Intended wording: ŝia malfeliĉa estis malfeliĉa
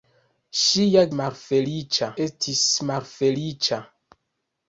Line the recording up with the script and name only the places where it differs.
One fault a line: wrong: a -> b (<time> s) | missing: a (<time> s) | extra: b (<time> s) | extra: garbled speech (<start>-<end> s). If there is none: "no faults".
no faults